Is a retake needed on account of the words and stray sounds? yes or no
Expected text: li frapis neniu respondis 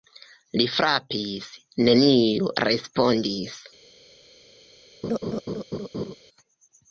yes